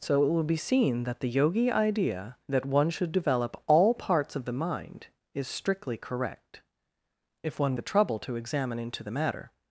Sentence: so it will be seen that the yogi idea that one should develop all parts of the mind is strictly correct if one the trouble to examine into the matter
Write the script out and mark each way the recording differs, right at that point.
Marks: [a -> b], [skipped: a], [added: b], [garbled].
so it will be seen that the yogi idea that one should develop all parts of the mind is strictly correct if one the trouble to examine into the matter